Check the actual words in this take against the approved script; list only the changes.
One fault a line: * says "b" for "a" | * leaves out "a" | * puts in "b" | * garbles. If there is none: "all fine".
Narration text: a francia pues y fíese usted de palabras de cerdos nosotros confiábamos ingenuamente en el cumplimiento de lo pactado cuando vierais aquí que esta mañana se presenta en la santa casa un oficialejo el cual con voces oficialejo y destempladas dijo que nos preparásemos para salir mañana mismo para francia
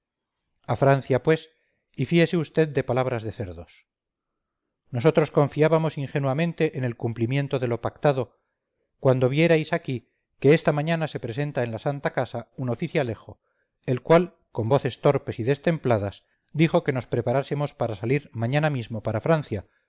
* says "torpes" for "oficialejo"